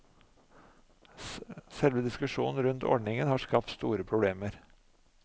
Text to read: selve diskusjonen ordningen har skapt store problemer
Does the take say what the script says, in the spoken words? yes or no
no